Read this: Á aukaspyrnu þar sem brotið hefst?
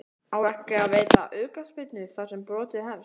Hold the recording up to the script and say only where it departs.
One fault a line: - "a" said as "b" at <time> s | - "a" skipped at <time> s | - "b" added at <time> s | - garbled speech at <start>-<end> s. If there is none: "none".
- "ekki að veita" added at 0.5 s